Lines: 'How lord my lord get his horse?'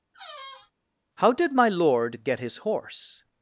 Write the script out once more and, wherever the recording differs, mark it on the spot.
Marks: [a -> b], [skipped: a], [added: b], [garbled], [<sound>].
[squeak] 'How [lord -> did] my lord get his horse?'